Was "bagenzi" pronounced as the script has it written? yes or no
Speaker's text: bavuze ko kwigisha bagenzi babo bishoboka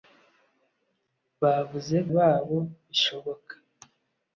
no